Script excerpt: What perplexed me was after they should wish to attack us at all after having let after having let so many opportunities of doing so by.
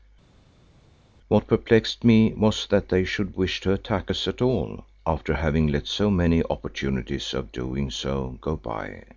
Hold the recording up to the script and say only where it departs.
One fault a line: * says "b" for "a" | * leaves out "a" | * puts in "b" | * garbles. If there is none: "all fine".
* says "that" for "after"
* leaves out "after having let"
* puts in "go"